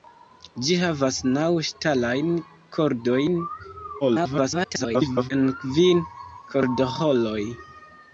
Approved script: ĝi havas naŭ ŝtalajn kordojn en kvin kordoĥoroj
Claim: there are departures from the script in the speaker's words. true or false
true